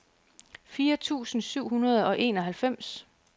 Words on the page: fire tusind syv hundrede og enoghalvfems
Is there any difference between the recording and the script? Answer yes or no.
no